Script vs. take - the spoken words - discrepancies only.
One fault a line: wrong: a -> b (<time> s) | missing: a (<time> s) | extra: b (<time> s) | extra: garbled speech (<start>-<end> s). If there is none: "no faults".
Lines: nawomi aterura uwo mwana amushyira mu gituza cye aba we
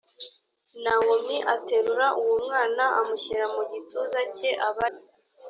no faults